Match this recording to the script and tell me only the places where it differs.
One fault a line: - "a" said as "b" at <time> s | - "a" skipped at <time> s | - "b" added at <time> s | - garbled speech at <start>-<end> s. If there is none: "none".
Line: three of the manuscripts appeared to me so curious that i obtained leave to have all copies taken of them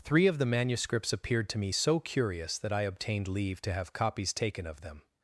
- "all" skipped at 3.9 s